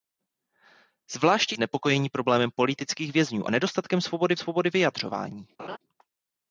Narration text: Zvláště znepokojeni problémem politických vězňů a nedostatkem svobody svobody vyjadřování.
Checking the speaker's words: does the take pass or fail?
pass